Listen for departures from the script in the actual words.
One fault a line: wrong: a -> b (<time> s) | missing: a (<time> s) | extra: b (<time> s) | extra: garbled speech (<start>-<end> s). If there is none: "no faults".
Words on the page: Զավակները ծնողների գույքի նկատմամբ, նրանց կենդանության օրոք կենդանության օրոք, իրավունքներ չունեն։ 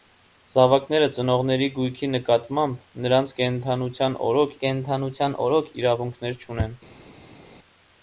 no faults